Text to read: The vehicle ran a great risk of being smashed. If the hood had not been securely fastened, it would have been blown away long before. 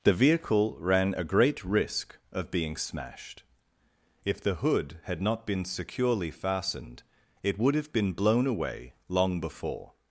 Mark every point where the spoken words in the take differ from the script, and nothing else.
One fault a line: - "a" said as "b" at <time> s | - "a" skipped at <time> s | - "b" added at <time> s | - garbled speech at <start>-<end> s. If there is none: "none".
none